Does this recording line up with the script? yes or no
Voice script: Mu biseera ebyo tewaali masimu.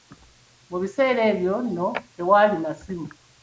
no